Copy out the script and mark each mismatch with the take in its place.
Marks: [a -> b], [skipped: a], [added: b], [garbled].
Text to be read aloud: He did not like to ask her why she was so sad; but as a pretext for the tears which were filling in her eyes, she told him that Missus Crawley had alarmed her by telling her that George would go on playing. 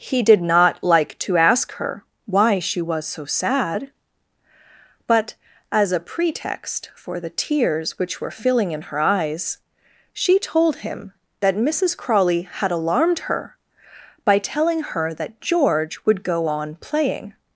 He did not like to ask her why she was so sad; but as a pretext for the tears which were filling in her eyes, she told him that Missus Crawley had alarmed her by telling her that George would go on playing.